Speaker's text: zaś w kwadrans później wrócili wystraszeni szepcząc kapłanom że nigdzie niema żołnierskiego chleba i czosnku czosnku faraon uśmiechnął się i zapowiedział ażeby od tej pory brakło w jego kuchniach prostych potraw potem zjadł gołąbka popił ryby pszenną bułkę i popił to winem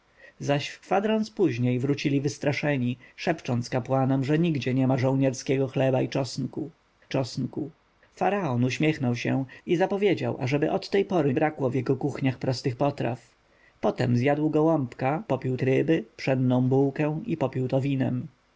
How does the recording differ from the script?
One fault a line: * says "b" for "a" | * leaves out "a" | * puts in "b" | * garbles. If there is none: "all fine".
all fine